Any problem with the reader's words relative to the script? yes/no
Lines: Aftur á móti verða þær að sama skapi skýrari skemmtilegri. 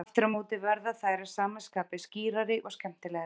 yes